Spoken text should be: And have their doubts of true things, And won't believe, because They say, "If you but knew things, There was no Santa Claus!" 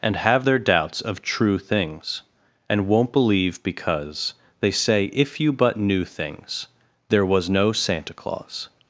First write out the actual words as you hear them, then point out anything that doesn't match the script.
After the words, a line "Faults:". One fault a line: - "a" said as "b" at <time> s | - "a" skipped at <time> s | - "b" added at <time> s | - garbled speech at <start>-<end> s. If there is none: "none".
And have their doubts of true things, And won't believe, because They say, "If you but knew things, There was no Santa Claus!"
Faults:
none